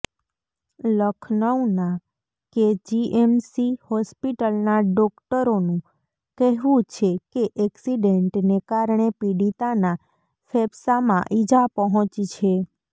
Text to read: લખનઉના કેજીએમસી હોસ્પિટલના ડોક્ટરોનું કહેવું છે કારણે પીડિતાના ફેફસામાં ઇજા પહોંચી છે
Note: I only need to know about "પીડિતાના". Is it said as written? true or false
true